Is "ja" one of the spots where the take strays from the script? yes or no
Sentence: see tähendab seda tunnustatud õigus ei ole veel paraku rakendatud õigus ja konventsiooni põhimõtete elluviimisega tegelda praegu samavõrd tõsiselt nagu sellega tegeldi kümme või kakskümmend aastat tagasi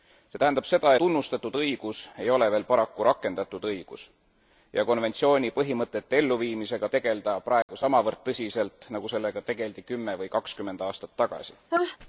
no